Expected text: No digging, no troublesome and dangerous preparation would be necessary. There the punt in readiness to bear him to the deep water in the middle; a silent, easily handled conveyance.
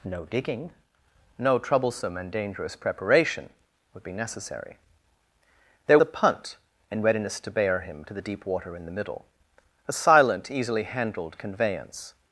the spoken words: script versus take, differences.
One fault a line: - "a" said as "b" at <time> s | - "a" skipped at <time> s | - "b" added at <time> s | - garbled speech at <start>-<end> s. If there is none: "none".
none